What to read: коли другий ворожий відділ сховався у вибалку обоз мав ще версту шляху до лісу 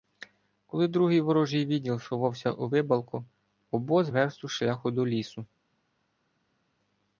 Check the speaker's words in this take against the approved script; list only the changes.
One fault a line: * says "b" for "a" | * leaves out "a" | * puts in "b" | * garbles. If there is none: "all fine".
* leaves out "мав ще"